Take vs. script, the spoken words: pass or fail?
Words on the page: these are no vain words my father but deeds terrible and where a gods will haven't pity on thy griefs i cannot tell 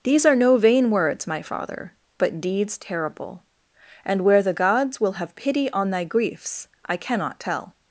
fail